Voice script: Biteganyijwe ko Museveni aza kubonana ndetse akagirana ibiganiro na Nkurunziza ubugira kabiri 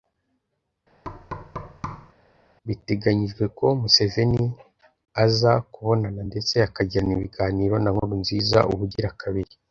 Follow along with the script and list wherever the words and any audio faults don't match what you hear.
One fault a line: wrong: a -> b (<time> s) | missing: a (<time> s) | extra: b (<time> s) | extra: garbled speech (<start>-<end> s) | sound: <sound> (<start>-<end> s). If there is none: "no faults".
sound: thud (1.0-2.1 s)